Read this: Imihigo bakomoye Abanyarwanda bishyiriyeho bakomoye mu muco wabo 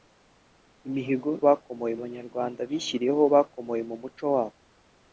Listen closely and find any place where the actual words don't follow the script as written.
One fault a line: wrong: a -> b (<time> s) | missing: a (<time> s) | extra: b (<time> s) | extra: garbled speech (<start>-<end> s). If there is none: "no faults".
no faults